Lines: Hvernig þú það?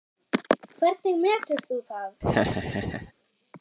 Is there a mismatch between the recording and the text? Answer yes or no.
yes